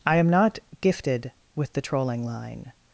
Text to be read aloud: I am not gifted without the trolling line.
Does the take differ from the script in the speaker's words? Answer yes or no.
yes